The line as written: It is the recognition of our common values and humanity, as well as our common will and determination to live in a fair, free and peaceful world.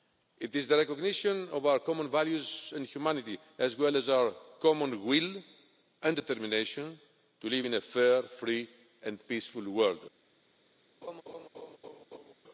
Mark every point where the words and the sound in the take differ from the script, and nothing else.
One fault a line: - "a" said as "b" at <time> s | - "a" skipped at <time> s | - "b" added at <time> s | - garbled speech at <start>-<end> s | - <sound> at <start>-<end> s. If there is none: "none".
- laugh at 11.0-12.3 s